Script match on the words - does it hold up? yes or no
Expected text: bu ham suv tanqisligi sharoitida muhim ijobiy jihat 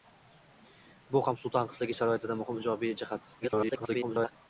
no